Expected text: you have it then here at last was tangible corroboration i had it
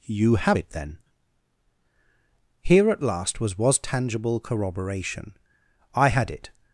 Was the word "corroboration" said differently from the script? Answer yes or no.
no